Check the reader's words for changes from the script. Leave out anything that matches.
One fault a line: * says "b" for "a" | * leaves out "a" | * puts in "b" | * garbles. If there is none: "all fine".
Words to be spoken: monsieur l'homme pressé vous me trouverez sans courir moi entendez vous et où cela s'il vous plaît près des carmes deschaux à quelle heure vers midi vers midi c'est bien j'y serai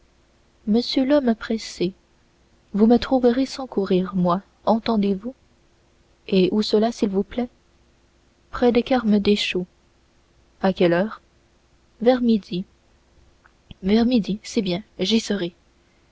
all fine